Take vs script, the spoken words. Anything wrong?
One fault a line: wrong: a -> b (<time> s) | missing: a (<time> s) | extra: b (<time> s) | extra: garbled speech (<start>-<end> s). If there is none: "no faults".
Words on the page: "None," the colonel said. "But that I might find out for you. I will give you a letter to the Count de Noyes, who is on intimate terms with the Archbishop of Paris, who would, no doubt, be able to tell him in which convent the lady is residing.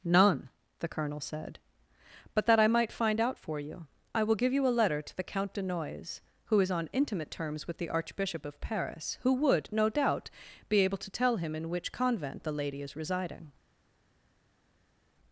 no faults